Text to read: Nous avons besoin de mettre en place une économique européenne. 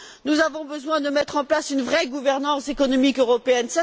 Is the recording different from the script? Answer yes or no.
yes